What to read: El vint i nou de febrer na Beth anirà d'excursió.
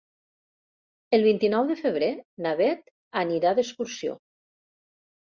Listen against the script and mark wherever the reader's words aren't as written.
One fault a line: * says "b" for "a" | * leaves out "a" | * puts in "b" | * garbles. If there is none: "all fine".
all fine